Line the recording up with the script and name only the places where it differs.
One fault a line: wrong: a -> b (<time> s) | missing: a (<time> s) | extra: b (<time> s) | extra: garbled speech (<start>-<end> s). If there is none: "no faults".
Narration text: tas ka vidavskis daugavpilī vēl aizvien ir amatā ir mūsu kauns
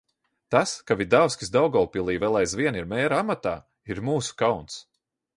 extra: mēra (2.9 s)